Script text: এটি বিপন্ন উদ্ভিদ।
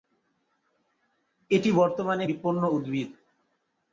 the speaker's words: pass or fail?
fail